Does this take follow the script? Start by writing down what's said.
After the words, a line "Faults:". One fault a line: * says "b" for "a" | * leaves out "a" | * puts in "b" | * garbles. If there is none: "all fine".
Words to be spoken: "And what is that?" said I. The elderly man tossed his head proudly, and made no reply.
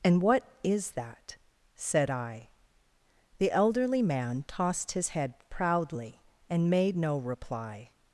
"And what is that?" said I. The elderly man tossed his head proudly, and made no reply.
Faults:
all fine